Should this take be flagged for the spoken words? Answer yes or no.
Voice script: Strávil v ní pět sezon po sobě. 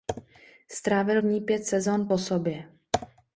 no